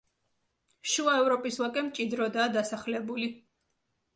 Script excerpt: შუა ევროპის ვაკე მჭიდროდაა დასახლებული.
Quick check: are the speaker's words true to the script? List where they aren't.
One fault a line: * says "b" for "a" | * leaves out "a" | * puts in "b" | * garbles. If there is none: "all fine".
all fine